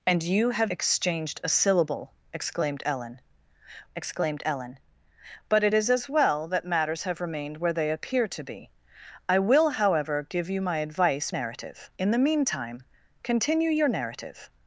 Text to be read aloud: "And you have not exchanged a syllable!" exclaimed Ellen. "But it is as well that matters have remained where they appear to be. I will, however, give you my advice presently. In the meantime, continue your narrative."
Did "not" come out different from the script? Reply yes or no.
yes